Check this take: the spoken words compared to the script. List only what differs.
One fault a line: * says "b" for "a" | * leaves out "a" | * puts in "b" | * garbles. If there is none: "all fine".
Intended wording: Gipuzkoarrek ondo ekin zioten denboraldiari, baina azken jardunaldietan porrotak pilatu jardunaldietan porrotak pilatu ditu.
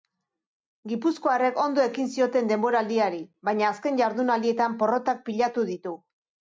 * leaves out "jardunaldietan porrotak pilatu"